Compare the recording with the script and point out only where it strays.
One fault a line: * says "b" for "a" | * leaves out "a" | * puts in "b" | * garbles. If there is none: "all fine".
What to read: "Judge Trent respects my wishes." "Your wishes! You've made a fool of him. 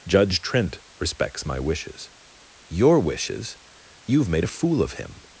all fine